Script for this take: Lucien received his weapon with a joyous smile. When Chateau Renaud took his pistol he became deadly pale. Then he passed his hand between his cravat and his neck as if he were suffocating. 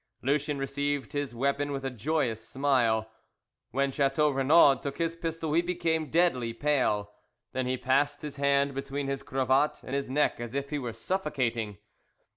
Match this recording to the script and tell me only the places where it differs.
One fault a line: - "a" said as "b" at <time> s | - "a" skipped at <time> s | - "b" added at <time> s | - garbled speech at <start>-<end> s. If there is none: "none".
none